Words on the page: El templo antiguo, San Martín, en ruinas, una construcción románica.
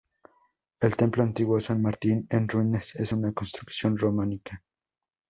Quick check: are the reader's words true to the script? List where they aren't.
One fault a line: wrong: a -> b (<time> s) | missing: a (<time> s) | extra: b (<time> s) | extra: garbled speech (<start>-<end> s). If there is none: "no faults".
extra: es (3.0 s)